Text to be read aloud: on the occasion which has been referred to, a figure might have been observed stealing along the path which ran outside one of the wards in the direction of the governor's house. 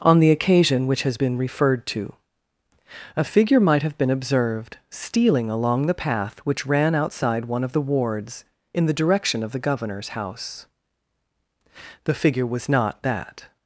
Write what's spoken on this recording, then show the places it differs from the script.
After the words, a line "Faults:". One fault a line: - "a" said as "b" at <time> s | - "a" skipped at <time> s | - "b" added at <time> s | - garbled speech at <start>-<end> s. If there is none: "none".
on the occasion which has been referred to, a figure might have been observed stealing along the path which ran outside one of the wards in the direction of the governor's house. The figure was not that
Faults:
- "The figure was not that" added at 12.0 s